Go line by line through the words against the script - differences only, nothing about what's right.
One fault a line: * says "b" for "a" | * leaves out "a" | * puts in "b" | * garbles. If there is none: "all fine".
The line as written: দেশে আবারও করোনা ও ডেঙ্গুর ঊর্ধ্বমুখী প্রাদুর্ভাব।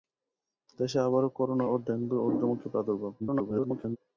* garbles